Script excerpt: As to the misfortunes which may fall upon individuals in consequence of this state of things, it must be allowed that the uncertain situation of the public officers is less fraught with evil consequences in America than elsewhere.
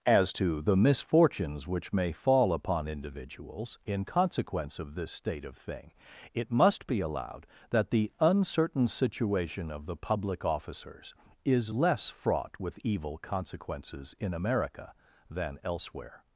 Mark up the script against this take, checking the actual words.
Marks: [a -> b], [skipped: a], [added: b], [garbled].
As to the misfortunes which may fall upon individuals in consequence of this state of [things, -> thing] it must be allowed that the uncertain situation of the public officers is less fraught with evil consequences in America than elsewhere.